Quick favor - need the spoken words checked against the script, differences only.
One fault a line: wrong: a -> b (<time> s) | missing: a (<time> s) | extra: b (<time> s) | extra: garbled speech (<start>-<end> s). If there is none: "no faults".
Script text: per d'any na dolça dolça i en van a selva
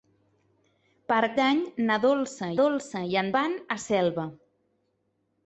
no faults